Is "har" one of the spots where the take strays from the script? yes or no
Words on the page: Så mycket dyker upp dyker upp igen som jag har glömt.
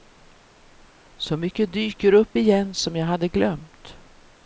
yes